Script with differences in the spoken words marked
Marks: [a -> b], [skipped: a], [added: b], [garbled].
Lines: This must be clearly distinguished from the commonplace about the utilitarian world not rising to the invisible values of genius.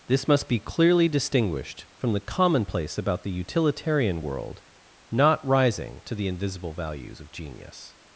This must be clearly distinguished from the commonplace about the utilitarian world not rising to the invisible values of genius.